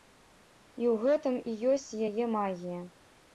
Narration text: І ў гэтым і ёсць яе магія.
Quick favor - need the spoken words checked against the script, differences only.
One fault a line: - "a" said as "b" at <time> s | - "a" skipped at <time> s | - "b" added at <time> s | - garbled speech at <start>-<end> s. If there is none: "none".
none